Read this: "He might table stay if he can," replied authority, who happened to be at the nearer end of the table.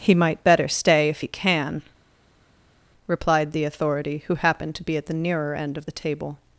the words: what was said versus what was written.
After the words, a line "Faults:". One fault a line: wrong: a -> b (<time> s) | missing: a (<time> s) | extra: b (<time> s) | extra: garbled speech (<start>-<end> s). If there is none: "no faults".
"He might better stay if he can," replied the authority, who happened to be at the nearer end of the table.
Faults:
wrong: table -> better (0.4 s)
extra: the (3.5 s)